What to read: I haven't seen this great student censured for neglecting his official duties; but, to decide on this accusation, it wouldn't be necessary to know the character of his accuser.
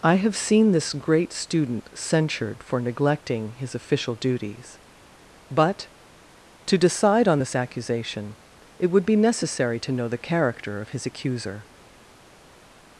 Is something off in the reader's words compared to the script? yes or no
yes